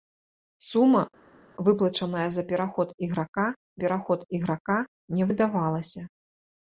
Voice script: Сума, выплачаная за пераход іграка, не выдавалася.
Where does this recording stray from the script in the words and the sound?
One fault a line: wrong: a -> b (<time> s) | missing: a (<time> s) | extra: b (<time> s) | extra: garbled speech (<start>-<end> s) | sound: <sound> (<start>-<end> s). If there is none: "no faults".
extra: пераход іграка (3.8 s)